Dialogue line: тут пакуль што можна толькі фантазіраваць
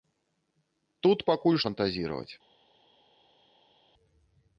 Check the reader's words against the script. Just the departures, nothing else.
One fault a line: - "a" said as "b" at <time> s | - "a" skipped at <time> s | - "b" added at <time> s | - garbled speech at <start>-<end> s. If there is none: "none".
- "што можна толькі" skipped at 1.6 s